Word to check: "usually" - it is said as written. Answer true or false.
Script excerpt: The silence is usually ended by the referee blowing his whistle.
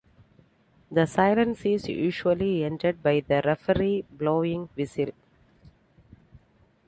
true